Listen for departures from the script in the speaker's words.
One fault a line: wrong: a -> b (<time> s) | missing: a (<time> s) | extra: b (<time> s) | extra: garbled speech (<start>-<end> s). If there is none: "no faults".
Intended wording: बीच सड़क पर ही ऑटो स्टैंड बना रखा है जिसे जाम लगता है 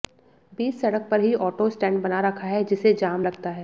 no faults